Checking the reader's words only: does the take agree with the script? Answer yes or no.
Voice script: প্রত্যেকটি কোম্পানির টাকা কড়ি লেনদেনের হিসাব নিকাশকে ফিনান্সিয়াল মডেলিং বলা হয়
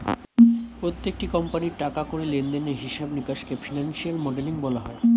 yes